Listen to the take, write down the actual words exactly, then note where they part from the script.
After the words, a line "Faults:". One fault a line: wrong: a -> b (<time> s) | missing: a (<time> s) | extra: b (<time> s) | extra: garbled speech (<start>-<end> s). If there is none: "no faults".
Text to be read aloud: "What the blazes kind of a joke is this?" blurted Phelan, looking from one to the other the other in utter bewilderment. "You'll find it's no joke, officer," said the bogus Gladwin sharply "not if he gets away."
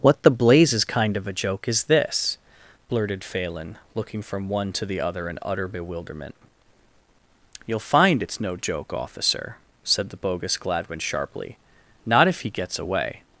"What the blazes kind of a joke is this?" blurted Phelan, looking from one to the other in utter bewilderment. "You'll find it's no joke, officer," said the bogus Gladwin sharply "not if he gets away."
Faults:
missing: the other (5.3 s)